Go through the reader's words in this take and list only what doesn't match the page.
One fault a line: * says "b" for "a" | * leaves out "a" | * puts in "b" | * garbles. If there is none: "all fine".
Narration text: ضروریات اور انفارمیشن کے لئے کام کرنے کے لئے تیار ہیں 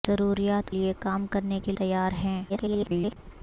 * leaves out "اور انفارمیشن کے"
* leaves out "لئے"
* garbles